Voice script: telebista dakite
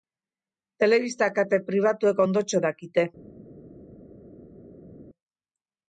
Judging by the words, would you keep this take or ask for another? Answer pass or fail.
fail